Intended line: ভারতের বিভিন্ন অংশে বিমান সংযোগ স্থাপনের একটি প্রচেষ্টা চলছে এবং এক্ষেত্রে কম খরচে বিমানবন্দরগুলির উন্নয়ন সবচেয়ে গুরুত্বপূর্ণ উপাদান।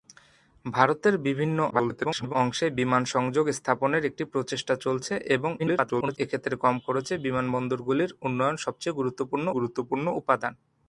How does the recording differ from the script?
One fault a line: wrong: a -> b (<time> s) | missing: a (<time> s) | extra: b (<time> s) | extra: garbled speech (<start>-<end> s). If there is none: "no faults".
extra: garbled speech (1.7-2.3 s)
extra: garbled speech (5.6-6.2 s)
extra: গুরুত্বপূর্ণ (9.6 s)